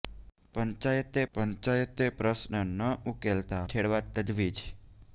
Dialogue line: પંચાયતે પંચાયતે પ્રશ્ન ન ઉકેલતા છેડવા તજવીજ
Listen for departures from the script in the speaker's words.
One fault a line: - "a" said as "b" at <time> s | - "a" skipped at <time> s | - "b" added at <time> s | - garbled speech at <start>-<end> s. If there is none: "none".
none